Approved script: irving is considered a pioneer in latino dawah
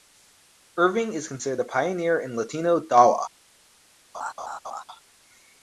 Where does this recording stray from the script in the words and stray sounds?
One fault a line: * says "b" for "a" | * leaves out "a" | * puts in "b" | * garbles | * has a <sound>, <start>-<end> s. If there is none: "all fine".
* has a laugh, 4.1-4.8 s